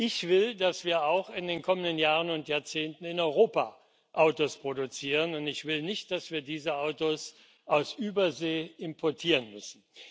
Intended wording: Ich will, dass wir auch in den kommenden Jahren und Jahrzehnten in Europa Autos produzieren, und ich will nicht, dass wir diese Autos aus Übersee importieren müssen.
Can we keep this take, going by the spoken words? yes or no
yes